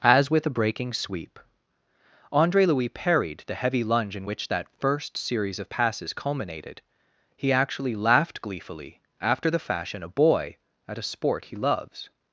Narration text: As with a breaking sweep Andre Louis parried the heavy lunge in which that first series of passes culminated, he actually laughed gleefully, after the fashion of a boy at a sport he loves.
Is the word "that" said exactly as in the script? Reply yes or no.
yes